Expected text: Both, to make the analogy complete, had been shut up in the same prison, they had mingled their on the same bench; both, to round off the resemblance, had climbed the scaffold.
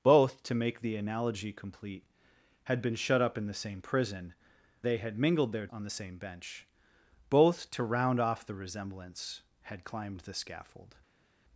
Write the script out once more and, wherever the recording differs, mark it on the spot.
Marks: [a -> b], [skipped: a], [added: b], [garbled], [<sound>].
Both, to make the analogy complete, had been shut up in the same prison, they had mingled their on the same bench; both, to round off the resemblance, had climbed the scaffold.